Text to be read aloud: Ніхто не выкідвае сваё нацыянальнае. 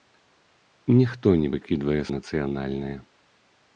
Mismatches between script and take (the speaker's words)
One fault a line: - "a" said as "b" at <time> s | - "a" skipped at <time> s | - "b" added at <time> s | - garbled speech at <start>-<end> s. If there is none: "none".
- "сваё" skipped at 2.0 s